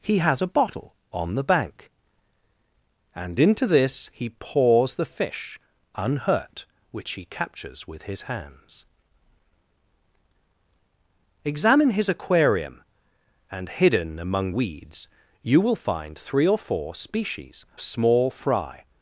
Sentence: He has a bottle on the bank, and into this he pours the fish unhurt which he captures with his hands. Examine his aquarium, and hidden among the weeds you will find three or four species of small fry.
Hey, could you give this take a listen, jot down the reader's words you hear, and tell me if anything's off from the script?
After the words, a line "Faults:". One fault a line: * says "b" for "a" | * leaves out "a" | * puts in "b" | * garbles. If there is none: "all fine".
He has a bottle on the bank, and into this he pours the fish unhurt which he captures with his hands. Examine his aquarium, and hidden among weeds you will find three or four species small fry.
Faults:
* leaves out "the"
* leaves out "of"